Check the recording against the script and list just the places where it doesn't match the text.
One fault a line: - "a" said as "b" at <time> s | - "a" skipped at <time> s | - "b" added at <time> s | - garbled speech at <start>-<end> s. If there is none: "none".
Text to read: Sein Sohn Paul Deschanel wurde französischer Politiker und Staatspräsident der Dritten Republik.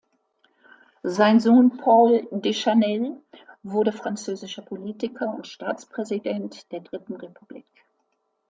none